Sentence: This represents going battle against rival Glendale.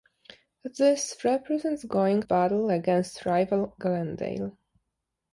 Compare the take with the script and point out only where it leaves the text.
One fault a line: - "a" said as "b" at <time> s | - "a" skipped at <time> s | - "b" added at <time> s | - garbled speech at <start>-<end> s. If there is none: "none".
none